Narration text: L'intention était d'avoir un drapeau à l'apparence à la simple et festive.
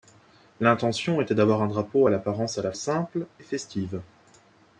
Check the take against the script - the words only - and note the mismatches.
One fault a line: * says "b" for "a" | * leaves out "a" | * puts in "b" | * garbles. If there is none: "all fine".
all fine